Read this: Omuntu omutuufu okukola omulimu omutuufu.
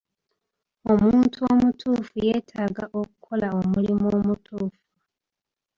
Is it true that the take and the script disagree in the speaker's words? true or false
true